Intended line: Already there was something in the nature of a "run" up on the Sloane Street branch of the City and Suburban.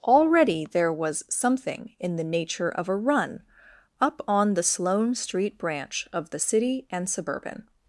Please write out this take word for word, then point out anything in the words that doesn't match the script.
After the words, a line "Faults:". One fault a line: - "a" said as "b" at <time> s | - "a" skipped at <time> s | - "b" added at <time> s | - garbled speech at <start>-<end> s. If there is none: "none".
Already there was something in the nature of a "run" up on the Sloane Street branch of the City and Suburban.
Faults:
none